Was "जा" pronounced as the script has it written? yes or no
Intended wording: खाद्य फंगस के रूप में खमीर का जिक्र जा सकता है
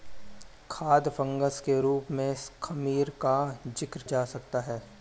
yes